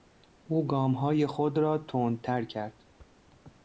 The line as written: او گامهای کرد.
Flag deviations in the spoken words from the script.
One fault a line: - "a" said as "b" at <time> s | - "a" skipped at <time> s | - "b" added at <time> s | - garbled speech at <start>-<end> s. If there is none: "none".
- "خود را تندتر" added at 1.3 s